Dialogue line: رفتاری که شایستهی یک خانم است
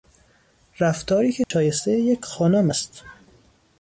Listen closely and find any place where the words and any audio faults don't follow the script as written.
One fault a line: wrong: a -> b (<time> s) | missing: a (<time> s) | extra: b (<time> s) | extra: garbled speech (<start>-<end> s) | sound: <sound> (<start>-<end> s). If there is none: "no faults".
sound: dropout (1.4-1.5 s)